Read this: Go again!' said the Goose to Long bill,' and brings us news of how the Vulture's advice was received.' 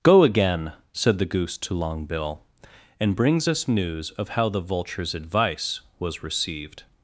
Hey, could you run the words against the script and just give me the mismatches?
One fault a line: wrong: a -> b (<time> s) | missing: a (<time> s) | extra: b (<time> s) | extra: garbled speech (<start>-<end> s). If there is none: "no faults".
no faults